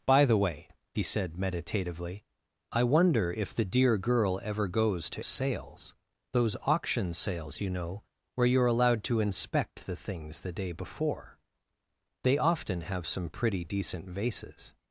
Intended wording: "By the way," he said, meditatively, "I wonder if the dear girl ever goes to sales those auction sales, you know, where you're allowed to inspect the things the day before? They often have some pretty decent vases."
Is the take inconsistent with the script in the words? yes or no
no